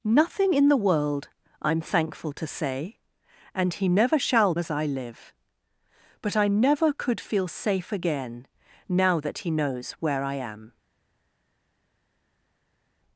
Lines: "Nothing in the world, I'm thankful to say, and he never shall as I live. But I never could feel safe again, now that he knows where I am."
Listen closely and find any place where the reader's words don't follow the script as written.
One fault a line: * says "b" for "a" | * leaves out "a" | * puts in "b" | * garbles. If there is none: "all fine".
all fine